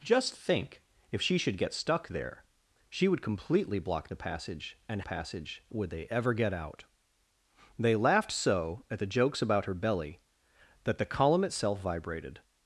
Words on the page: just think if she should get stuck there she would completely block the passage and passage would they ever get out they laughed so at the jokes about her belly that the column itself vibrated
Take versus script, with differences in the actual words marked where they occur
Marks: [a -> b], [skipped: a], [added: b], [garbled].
just think if she should get stuck there she would completely block the passage and passage would they ever get out they laughed so at the jokes about her belly that the column itself vibrated